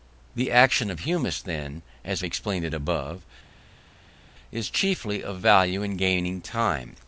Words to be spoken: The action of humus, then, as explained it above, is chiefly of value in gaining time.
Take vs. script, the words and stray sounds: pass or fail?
pass